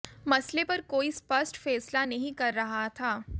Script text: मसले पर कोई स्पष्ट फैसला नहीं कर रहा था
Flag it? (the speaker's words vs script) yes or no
no